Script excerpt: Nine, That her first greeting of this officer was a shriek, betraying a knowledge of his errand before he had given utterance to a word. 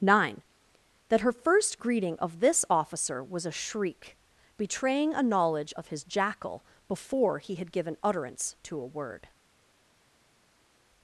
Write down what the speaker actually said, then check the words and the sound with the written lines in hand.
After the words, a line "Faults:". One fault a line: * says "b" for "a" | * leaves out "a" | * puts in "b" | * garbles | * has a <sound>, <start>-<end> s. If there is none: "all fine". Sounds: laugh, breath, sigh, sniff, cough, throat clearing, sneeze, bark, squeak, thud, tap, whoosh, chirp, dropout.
Nine, That her first greeting of this officer was a shriek, betraying a knowledge of his jackal before he had given utterance to a word.
Faults:
* says "jackal" for "errand"